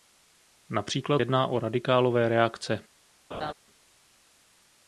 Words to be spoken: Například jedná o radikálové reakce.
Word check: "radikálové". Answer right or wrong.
right